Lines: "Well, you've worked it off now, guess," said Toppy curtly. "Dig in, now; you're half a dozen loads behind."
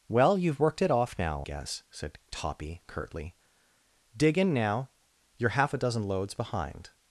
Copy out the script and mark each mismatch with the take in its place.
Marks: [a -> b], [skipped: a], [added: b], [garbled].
"Well, you've worked it off now, guess," said Toppy curtly. "Dig in, now; you're half a dozen loads behind."